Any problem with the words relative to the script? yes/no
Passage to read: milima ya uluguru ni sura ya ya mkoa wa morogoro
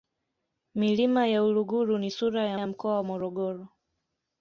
no